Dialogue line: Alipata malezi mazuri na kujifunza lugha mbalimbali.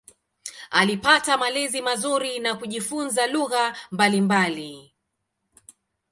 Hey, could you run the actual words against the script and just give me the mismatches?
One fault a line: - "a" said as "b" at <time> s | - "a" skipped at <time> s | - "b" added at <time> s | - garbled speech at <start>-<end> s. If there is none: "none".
none